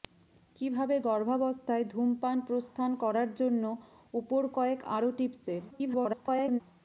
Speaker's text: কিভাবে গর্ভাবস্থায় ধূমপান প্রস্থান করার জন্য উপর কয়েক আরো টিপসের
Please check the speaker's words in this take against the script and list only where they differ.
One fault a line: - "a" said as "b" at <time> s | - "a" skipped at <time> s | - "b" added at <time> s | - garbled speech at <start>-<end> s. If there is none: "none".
- garbled speech at 5.7-6.6 s